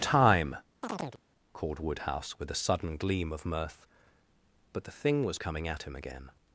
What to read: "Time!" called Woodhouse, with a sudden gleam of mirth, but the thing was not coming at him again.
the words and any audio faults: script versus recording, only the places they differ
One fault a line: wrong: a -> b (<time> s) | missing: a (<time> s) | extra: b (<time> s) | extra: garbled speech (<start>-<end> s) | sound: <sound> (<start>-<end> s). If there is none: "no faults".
sound: chirp (0.8-1.2 s)
missing: not (5.4 s)